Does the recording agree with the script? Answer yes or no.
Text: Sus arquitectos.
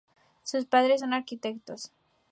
no